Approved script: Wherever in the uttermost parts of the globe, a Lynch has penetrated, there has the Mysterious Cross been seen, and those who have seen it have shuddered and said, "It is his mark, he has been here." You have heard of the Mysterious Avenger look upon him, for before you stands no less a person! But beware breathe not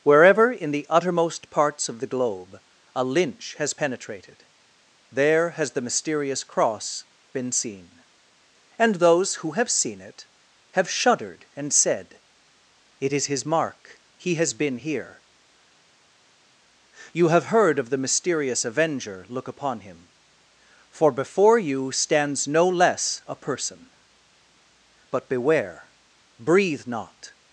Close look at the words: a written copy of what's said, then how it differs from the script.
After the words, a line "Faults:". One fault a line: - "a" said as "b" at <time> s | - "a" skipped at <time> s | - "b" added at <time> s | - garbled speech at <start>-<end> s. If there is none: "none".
Wherever in the uttermost parts of the globe, a Lynch has penetrated, there has the Mysterious Cross been seen, and those who have seen it have shuddered and said, "It is his mark, he has been here." You have heard of the Mysterious Avenger look upon him, for before you stands no less a person! But beware breathe not
Faults:
none